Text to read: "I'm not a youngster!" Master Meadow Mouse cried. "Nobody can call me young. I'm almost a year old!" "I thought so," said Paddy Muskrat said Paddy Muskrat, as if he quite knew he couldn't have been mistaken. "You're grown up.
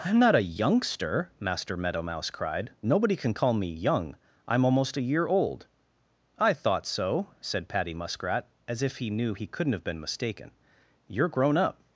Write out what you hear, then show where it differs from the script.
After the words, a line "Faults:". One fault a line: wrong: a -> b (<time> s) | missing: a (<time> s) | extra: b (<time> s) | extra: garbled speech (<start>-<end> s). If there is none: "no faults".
"I'm not a youngster!" Master Meadow Mouse cried. "Nobody can call me young. I'm almost a year old!" "I thought so," said Paddy Muskrat, as if he knew he couldn't have been mistaken. "You're grown up.
Faults:
missing: said Paddy Muskrat (8.5 s)
missing: quite (9.1 s)